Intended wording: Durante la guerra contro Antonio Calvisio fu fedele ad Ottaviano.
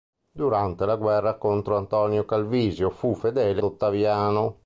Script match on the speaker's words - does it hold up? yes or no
no